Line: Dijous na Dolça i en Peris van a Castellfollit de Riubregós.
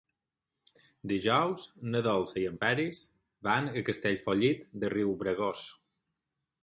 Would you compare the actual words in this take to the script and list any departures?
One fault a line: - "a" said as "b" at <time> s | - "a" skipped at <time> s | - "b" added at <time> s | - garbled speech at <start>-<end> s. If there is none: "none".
none